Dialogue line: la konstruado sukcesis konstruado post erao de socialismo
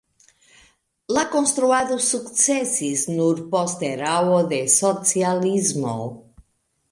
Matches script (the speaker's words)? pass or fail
fail